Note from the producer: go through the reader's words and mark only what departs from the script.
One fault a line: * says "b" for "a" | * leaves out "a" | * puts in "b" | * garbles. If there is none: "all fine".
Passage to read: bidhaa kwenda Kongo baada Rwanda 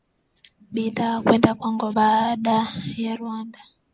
* puts in "ya"